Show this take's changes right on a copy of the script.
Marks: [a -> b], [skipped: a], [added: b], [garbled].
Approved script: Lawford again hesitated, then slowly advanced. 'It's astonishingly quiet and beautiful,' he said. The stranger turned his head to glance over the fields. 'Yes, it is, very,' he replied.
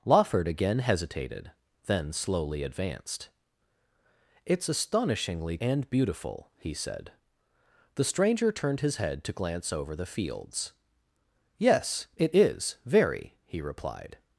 Lawford again hesitated, then slowly advanced. 'It's astonishingly [skipped: quiet] and beautiful,' he said. The stranger turned his head to glance over the fields. 'Yes, it is, very,' he replied.